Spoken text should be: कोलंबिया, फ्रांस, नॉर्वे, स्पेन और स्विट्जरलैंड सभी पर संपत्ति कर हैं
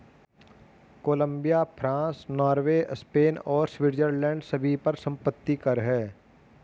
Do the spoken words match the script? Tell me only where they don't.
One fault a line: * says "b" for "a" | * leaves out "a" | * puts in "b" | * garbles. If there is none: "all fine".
all fine